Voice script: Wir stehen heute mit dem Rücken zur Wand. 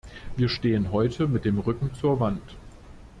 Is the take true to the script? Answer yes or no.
yes